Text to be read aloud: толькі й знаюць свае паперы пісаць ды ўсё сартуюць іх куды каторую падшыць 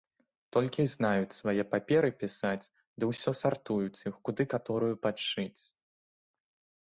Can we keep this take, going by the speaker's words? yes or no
yes